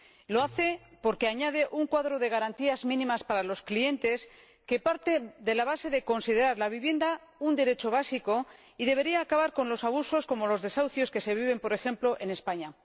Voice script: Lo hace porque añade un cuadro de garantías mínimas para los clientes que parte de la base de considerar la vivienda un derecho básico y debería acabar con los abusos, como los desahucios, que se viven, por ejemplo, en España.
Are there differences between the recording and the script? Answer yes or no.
no